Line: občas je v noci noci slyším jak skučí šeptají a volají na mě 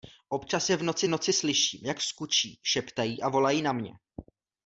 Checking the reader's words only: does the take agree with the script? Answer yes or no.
yes